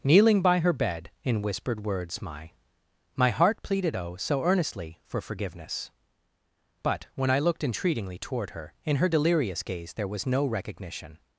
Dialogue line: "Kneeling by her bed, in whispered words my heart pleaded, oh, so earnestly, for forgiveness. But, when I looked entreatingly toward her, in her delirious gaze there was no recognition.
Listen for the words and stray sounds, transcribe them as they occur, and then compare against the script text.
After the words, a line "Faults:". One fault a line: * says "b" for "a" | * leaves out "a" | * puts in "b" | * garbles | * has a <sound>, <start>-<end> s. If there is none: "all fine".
"Kneeling by her bed, in whispered words my my heart pleaded, oh, so earnestly, for forgiveness. But, when I looked entreatingly toward her, in her delirious gaze there was no recognition.
Faults:
* puts in "my"